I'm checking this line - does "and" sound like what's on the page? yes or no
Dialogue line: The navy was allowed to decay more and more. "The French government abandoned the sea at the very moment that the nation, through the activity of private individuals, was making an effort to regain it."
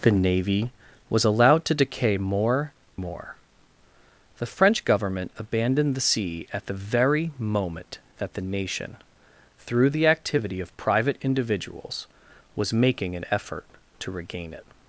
no